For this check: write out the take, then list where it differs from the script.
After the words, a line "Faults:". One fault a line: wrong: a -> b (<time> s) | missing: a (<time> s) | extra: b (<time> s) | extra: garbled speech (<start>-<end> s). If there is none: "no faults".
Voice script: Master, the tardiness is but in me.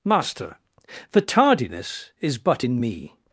Master, the tardiness is but in me.
Faults:
no faults